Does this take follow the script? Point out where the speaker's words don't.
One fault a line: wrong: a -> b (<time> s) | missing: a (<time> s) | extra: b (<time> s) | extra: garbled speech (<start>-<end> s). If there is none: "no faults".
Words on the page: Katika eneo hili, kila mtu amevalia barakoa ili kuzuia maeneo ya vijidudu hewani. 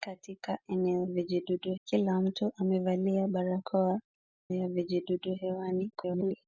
wrong: hili -> vijidudu (1.1 s)
missing: ili kuzuia maeneo (4.0 s)
extra: garbled speech (5.9-6.4 s)